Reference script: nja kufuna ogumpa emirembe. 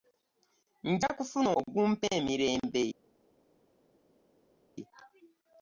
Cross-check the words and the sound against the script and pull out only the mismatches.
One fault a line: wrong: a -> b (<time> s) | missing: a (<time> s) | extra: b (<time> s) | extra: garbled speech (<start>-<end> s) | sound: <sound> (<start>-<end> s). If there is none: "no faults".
no faults